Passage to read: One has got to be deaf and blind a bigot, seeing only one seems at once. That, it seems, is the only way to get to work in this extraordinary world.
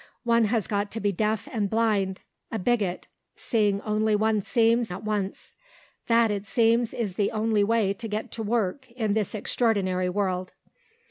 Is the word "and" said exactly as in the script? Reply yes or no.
yes